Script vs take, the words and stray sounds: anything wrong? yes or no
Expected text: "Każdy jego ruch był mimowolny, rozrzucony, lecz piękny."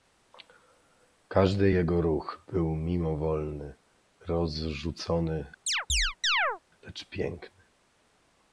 yes